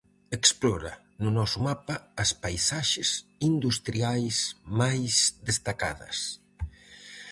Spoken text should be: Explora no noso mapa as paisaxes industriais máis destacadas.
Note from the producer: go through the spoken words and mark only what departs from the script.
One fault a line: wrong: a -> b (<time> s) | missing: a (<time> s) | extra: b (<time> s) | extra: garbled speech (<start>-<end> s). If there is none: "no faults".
no faults